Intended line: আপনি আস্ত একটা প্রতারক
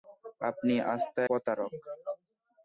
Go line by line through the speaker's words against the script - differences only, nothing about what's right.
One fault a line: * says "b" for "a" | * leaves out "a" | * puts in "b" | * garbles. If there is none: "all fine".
* leaves out "একটা"